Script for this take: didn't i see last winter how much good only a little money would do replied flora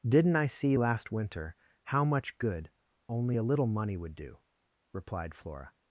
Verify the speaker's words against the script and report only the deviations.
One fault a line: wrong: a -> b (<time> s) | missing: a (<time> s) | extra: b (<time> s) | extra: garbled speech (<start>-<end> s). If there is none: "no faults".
no faults